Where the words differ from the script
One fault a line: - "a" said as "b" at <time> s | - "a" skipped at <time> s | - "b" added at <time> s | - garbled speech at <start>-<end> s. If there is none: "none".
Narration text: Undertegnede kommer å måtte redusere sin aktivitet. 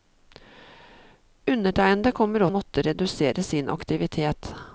none